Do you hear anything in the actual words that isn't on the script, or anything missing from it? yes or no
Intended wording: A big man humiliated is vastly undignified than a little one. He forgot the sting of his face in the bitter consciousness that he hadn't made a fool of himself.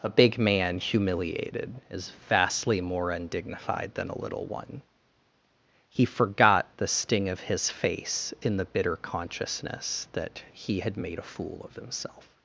yes